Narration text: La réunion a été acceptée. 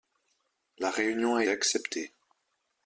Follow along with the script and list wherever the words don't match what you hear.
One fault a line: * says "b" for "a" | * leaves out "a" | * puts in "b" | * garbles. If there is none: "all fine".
* leaves out "été"